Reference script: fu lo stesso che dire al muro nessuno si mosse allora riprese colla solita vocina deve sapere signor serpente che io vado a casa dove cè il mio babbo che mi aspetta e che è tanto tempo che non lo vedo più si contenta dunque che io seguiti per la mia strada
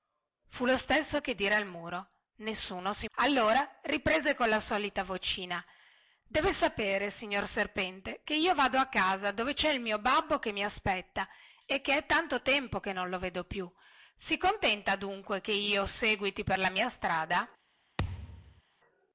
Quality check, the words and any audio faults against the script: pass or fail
fail